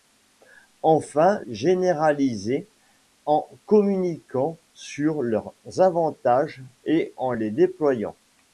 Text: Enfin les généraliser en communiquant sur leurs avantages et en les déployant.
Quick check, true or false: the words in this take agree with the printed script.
false